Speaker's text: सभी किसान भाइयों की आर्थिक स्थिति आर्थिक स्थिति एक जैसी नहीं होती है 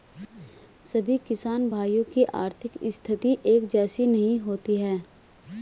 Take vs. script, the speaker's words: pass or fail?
fail